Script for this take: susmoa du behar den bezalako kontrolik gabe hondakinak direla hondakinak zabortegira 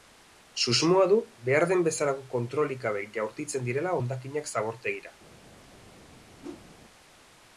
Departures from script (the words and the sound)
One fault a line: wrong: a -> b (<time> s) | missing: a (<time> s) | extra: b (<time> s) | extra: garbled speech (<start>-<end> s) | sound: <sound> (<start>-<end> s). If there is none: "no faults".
wrong: hondakinak -> jaurtitzen (3.2 s)
sound: whoosh (6.4-6.7 s)